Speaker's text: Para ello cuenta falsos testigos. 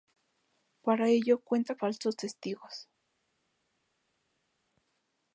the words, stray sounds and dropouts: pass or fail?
pass